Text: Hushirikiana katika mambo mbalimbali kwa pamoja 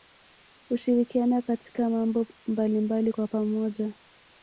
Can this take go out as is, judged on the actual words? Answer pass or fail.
pass